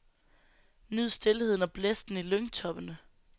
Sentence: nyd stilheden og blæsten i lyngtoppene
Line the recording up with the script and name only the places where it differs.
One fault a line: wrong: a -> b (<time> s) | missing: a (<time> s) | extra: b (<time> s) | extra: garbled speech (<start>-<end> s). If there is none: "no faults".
no faults